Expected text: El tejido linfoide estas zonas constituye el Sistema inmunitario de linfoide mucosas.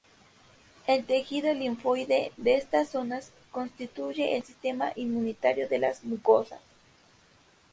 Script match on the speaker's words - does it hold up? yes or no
no